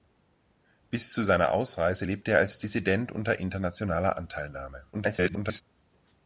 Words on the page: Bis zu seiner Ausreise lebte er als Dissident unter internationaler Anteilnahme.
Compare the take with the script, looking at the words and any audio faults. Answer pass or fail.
fail